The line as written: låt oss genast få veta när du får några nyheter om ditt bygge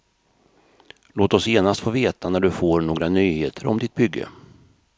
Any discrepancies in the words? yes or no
no